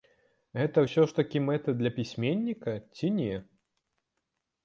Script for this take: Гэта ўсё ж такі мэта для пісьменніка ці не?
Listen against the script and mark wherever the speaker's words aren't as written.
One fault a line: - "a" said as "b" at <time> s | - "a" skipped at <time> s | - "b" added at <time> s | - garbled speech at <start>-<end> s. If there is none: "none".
none